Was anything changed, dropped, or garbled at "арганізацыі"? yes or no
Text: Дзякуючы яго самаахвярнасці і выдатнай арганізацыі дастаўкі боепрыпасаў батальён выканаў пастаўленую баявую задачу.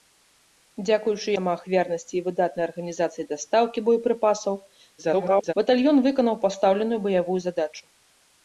no